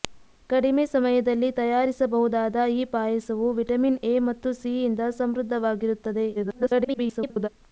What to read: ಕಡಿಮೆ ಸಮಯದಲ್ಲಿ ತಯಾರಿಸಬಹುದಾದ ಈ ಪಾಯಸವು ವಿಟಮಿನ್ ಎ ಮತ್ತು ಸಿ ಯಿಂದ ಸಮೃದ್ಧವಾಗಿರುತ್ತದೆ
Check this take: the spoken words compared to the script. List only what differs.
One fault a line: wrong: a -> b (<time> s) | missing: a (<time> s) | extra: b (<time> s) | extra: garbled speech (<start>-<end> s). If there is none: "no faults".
extra: garbled speech (6.3-7.5 s)